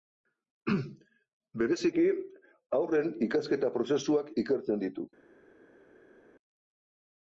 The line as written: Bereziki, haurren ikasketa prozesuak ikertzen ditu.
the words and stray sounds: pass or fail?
pass